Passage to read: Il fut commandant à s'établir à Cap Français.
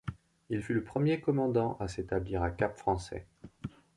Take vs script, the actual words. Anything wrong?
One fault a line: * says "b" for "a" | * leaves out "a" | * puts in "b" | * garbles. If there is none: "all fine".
* puts in "le premier"